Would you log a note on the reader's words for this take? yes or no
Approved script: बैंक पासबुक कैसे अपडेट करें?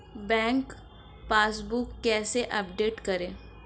no